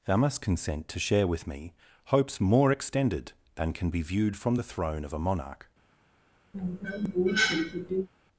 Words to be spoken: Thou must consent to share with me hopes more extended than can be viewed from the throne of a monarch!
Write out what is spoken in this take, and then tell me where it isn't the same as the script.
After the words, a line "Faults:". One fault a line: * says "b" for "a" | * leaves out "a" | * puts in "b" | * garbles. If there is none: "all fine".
Thou must consent to share with me hopes more extended than can be viewed from the throne of a monarch!
Faults:
all fine